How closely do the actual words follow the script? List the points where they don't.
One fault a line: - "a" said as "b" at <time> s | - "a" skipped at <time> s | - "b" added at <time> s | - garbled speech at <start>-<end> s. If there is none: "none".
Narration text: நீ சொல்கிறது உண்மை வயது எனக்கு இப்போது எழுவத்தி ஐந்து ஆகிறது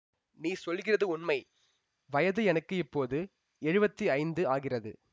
none